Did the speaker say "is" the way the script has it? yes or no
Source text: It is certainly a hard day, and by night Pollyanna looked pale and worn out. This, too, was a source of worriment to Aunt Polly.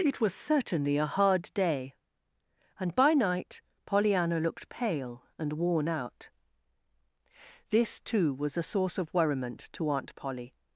no